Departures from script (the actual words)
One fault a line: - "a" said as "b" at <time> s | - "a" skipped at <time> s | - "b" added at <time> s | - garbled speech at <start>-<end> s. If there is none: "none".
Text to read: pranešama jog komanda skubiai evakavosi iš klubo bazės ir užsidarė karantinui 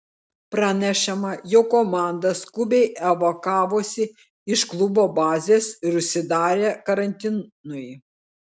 none